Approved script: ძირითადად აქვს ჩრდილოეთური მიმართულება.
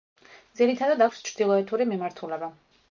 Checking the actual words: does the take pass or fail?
pass